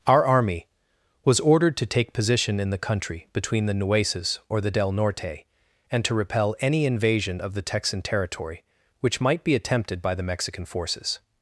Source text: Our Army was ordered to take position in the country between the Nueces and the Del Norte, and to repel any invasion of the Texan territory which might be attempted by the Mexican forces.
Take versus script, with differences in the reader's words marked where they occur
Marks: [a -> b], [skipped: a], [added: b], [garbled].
Our Army was ordered to take position in the country between the Nueces [and -> or] the Del Norte, and to repel any invasion of the Texan territory which might be attempted by the Mexican forces.